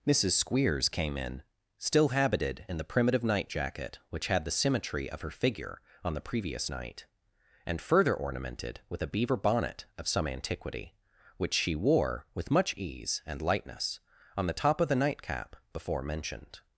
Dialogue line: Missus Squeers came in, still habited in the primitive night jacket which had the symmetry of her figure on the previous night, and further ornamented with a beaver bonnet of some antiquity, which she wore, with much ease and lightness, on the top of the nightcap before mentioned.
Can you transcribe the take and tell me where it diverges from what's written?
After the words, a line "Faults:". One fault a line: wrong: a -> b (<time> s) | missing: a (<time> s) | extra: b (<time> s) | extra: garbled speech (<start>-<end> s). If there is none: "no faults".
Missus Squeers came in, still habited in the primitive night jacket which had the symmetry of her figure on the previous night, and further ornamented with a beaver bonnet of some antiquity, which she wore, with much ease and lightness, on the top of the nightcap before mentioned.
Faults:
no faults